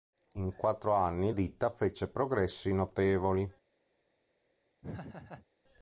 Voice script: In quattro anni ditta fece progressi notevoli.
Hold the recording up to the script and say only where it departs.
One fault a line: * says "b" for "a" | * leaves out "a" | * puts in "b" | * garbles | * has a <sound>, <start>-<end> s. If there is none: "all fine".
* has a laugh, 4.8-5.5 s